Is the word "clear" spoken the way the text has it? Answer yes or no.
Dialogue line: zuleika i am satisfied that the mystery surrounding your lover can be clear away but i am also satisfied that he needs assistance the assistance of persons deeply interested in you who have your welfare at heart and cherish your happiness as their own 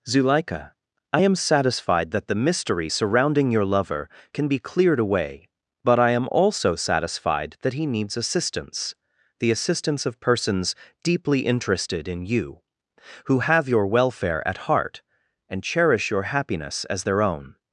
no